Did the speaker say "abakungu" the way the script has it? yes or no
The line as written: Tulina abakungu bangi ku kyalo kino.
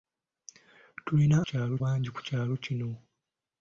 no